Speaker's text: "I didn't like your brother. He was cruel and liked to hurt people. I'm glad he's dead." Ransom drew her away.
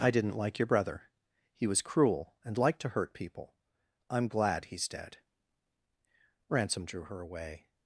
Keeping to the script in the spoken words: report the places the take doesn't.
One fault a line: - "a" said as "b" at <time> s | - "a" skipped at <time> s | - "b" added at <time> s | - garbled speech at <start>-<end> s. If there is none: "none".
none